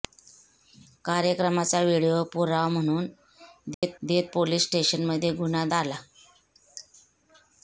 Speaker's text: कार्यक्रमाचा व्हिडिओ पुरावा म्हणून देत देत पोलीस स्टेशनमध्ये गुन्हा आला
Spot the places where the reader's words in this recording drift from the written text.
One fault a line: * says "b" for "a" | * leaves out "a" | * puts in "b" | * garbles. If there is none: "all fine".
all fine